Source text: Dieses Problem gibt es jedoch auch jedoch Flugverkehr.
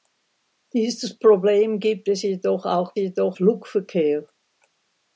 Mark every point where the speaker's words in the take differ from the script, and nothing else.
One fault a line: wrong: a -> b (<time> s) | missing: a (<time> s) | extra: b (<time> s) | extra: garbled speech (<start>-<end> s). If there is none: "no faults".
no faults